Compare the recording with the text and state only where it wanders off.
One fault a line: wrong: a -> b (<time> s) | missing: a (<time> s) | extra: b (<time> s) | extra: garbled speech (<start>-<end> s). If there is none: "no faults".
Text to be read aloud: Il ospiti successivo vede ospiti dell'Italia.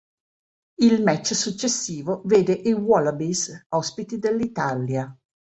wrong: ospiti -> match (1.0 s)
extra: i Wallabies (2.5 s)